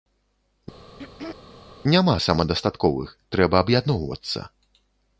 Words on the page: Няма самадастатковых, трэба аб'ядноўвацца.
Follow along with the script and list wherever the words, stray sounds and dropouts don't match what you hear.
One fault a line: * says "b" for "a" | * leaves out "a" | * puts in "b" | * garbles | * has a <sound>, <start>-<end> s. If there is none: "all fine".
* has a throat clearing, 0.9-1.4 s